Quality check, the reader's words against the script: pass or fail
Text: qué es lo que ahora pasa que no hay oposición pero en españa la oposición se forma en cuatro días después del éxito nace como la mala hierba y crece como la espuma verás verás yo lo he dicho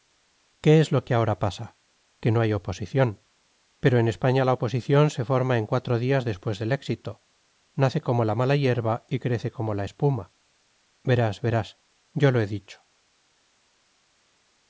pass